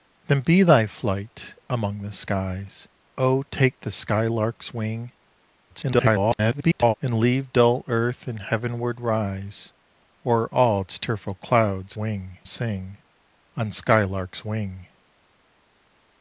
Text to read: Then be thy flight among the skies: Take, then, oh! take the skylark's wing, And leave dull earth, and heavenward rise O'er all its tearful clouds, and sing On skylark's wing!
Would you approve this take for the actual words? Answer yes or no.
no